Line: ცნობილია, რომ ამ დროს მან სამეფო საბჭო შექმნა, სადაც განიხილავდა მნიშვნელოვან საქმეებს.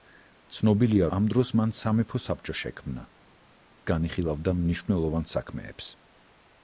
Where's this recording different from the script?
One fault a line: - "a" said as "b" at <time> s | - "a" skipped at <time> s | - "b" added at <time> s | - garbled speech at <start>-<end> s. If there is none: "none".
- "რომ" skipped at 1.1 s
- "სადაც" skipped at 3.0 s